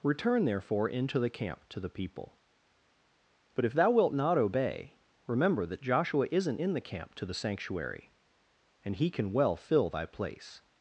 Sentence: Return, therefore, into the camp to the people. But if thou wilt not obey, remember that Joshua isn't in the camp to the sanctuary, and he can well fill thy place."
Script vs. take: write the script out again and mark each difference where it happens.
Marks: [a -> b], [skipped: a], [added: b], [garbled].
Return, therefore, into the camp to the people. But if thou wilt not obey, remember that Joshua isn't in the camp to the sanctuary, and he can well fill thy place."